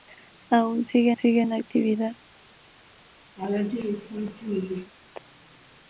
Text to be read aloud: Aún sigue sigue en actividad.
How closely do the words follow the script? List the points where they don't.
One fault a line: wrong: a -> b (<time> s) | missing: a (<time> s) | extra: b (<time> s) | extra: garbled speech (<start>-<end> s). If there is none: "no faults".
no faults